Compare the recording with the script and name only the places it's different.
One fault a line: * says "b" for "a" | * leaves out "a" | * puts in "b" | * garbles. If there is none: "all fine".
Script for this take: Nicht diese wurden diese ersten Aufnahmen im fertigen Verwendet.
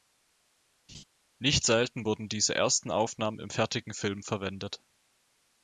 * says "selten" for "diese"
* puts in "Film"